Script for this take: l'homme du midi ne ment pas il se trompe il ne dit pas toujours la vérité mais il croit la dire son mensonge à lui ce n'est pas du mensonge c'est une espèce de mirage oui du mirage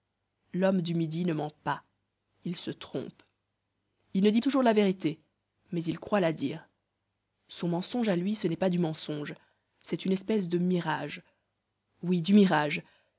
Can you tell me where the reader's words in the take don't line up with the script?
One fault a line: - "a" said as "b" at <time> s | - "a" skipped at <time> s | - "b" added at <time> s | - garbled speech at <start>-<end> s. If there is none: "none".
- "pas" skipped at 4.4 s